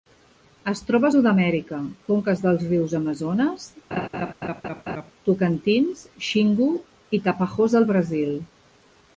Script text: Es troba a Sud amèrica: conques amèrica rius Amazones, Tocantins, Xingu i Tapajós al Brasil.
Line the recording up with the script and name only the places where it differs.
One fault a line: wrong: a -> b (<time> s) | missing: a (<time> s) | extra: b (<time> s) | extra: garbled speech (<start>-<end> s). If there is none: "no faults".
wrong: amèrica -> dels (2.4 s)